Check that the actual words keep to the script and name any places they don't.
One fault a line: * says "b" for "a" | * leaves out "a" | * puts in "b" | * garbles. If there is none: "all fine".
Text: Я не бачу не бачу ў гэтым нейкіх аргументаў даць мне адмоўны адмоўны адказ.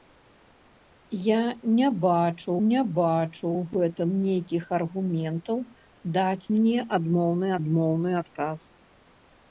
all fine